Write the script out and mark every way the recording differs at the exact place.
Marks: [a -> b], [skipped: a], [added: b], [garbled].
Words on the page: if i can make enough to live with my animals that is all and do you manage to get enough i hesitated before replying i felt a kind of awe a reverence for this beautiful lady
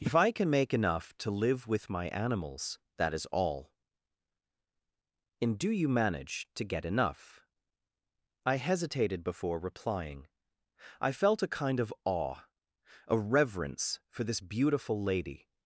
if i can make enough to live with my animals that is all and do you manage to get enough i hesitated before replying i felt a kind of awe a reverence for this beautiful lady